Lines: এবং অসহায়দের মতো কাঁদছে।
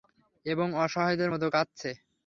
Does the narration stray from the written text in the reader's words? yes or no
no